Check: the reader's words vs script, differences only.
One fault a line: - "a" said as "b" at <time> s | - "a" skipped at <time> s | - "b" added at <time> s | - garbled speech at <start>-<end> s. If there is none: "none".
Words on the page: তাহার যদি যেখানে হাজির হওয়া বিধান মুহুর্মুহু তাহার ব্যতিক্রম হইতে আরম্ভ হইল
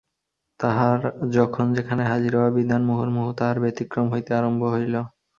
- "যদি" said as "যখন" at 1.3 s